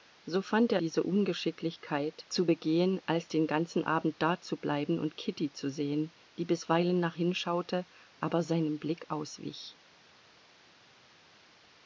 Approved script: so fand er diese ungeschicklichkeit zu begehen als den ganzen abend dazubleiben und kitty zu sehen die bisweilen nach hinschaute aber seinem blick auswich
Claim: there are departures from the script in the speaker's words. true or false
false